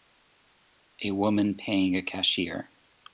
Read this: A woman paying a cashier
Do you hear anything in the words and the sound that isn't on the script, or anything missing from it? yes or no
no